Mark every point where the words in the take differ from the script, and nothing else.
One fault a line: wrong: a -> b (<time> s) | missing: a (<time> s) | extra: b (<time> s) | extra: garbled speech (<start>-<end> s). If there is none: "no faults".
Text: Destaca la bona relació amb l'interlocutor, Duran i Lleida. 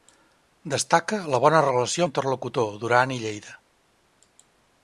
missing: amb (2.1 s)